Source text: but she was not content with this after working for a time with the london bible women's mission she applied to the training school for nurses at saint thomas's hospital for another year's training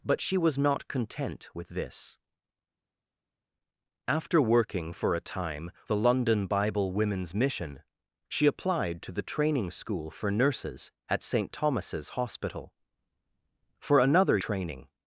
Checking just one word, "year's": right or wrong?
wrong